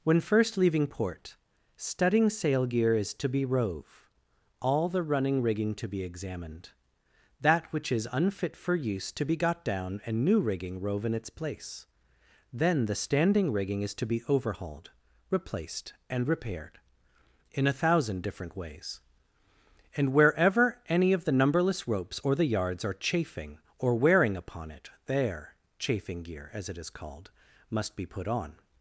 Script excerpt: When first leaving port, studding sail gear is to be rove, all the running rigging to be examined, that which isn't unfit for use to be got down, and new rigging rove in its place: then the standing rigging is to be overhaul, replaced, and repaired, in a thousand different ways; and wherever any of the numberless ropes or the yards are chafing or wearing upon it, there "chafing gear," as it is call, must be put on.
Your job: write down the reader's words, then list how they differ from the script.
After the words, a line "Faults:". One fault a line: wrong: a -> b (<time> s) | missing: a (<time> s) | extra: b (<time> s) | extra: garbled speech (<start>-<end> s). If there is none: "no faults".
When first leaving port, studding sail gear is to be rove, all the running rigging to be examined, that which is unfit for use to be got down, and new rigging rove in its place: then the standing rigging is to be overhauled, replaced, and repaired, in a thousand different ways; and wherever any of the numberless ropes or the yards are chafing or wearing upon it, there "chafing gear," as it is called, must be put on.
Faults:
wrong: isn't -> is (7.9 s)
wrong: overhaul -> overhauled (14.3 s)
wrong: call -> called (26.9 s)